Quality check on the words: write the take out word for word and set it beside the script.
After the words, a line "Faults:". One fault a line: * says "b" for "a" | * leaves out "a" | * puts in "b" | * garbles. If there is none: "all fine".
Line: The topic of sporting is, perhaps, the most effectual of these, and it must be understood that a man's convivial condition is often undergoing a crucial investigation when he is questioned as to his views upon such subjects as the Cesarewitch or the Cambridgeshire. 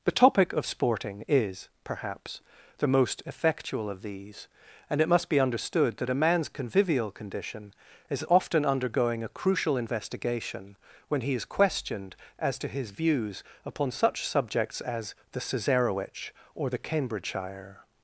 The topic of sporting is, perhaps, the most effectual of these, and it must be understood that a man's convivial condition is often undergoing a crucial investigation when he is questioned as to his views upon such subjects as the Cesarewitch or the Cambridgeshire.
Faults:
all fine